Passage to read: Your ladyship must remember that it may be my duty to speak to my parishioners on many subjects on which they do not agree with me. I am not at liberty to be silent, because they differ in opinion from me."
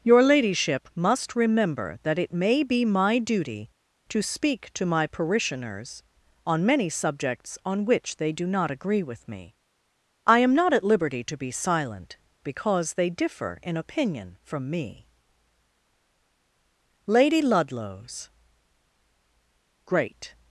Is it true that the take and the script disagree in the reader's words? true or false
true